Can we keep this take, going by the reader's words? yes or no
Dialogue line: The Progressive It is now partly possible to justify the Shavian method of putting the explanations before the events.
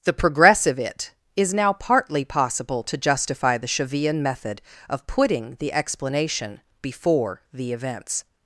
no